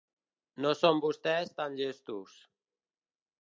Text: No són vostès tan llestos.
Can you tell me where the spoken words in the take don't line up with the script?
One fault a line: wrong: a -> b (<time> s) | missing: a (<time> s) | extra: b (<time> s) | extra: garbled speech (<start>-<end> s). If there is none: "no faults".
no faults